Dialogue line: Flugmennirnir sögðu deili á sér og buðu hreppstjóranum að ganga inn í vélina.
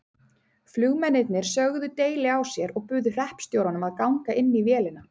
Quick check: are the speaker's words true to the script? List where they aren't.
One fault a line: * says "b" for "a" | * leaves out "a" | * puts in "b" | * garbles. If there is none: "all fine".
all fine